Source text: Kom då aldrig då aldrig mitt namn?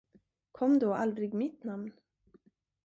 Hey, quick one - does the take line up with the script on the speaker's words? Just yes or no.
no